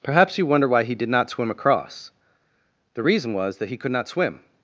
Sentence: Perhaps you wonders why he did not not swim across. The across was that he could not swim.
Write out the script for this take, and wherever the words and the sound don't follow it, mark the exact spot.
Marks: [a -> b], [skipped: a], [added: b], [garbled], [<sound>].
Perhaps you [wonders -> wonder] why he did not [skipped: not] swim across. The [across -> reason] was that he could not swim.